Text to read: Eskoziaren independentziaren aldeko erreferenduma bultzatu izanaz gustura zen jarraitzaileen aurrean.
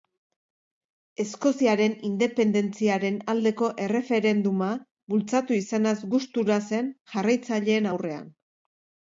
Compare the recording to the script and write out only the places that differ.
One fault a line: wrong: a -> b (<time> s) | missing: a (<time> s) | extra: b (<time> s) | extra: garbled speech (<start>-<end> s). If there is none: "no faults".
no faults